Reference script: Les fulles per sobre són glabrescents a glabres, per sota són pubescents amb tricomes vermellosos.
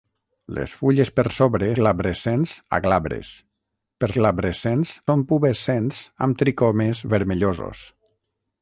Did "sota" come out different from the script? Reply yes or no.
yes